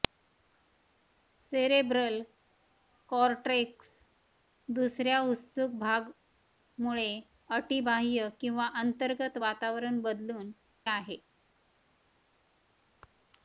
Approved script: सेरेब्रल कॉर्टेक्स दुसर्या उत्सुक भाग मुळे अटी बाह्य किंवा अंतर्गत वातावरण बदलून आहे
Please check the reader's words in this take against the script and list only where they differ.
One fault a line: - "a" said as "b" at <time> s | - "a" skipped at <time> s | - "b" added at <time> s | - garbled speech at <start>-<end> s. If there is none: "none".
none